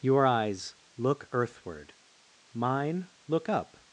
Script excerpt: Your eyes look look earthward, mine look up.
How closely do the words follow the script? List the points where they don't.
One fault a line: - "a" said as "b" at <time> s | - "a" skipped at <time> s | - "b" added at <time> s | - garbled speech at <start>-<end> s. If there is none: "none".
- "look" skipped at 1.3 s